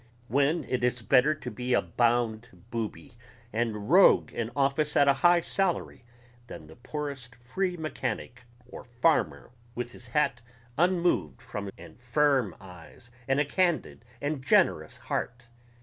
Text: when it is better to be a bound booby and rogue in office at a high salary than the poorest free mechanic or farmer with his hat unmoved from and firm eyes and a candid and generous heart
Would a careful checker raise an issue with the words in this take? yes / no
no